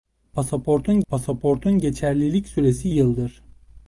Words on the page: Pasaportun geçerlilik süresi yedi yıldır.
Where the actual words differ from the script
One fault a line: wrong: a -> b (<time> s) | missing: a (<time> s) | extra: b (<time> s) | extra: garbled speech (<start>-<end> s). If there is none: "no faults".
extra: pasaportun (1.1 s)
missing: yedi (2.9 s)